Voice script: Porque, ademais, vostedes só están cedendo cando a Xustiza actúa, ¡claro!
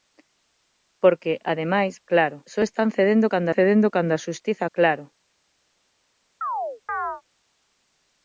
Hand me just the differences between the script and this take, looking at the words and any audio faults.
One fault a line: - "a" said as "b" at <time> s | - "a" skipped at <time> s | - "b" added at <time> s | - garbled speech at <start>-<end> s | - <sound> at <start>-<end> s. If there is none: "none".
- "vostedes" said as "claro" at 2.1 s
- "cedendo cando" added at 3.6 s
- "actúa" skipped at 4.6 s
- chirp at 6.4-7.2 s